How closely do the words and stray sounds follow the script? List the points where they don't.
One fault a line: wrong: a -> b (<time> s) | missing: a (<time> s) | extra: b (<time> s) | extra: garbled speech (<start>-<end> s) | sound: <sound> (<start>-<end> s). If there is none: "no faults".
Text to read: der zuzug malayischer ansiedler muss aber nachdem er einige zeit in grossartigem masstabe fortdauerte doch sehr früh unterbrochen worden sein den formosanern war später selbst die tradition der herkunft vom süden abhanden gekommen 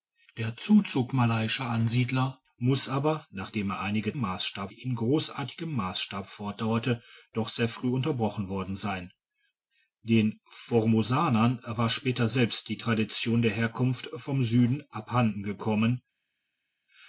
wrong: zeit -> masstabe (4.1 s)